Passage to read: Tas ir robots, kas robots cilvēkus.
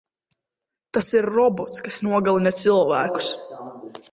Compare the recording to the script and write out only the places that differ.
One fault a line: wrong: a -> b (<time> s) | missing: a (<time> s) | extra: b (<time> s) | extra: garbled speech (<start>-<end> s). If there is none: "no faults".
wrong: robots -> nogalina (2.1 s)